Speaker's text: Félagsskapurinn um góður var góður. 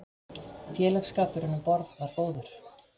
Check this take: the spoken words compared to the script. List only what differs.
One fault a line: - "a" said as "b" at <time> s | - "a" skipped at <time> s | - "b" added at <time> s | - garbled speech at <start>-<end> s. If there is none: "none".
- "góður" said as "borð" at 1.7 s